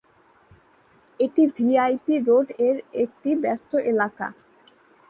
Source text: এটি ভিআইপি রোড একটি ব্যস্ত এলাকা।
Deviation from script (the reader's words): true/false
true